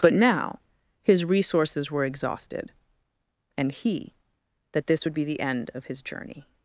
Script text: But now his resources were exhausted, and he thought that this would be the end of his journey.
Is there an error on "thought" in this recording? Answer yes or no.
yes